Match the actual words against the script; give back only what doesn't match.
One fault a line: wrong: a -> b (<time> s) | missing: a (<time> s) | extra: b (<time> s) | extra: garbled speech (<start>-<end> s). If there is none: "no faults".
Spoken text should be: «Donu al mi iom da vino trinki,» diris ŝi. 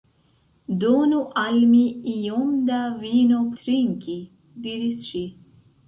no faults